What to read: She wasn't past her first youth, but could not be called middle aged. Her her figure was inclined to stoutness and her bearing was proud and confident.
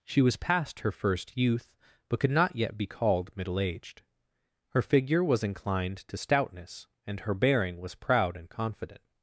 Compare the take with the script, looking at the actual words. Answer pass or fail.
fail